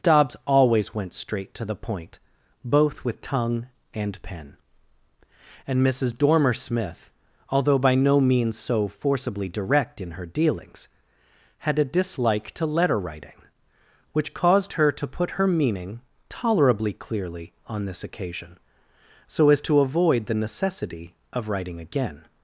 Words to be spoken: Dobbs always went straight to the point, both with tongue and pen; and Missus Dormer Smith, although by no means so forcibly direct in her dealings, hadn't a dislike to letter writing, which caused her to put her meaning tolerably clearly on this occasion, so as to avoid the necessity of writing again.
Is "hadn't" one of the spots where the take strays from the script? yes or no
yes